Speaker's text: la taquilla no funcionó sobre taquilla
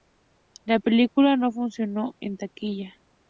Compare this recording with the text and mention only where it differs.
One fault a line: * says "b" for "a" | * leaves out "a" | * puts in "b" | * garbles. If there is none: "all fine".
* says "película" for "taquilla"
* says "en" for "sobre"